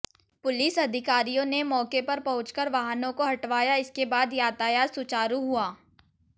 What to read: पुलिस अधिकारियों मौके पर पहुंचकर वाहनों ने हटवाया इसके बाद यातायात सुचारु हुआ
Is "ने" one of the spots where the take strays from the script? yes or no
yes